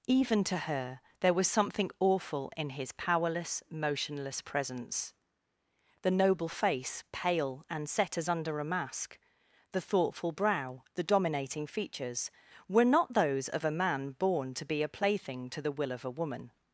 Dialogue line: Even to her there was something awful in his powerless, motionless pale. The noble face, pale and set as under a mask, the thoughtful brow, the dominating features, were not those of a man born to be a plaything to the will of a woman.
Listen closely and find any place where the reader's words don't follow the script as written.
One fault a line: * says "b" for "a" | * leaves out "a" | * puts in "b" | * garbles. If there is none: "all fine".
* says "presence" for "pale"